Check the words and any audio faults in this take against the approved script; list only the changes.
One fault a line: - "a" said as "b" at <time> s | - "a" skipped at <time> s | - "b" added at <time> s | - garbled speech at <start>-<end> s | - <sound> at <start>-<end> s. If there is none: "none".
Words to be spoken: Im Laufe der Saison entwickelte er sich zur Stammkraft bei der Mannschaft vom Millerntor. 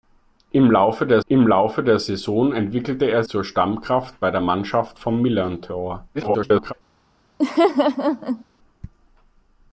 - "im Laufe der" added at 1.2 s
- "sich" skipped at 3.2 s
- garbled speech at 6.1-6.7 s
- laugh at 7.4-8.4 s